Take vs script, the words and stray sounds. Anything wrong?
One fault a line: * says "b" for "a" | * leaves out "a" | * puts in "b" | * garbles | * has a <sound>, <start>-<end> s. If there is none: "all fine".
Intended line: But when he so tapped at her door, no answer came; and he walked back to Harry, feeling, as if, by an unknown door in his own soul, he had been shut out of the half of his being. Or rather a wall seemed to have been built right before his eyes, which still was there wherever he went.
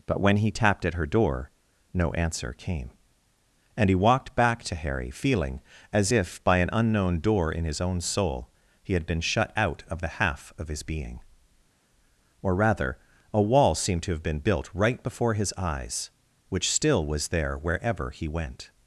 * leaves out "so"